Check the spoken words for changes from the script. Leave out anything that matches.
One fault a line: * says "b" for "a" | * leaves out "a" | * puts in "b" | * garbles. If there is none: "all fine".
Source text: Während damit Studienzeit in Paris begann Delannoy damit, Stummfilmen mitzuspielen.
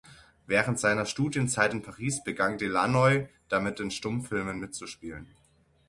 * says "seiner" for "damit"
* puts in "in"